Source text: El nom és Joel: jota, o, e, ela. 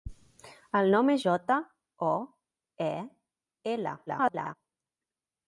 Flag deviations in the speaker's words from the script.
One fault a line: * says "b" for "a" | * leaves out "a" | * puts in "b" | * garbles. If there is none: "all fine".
* leaves out "Joel"
* garbles